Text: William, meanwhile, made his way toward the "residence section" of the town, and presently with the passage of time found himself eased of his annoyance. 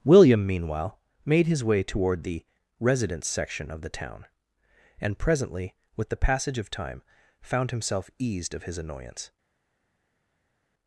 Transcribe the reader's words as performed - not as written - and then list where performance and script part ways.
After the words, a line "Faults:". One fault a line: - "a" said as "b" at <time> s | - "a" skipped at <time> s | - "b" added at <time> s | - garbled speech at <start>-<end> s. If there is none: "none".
William, meanwhile, made his way toward the "residence section" of the town, and presently with the passage of time found himself eased of his annoyance.
Faults:
none